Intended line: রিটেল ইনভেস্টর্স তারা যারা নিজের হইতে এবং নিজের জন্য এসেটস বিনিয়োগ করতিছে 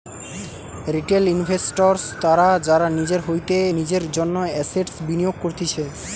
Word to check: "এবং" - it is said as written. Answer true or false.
false